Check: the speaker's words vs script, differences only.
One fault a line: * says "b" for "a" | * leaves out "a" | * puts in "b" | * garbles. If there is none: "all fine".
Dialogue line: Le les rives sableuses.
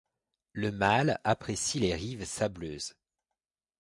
* puts in "mâle apprécie"